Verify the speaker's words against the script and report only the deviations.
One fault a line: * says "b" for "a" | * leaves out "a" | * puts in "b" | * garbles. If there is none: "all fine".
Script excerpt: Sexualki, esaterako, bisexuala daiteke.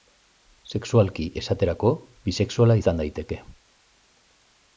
* puts in "izan"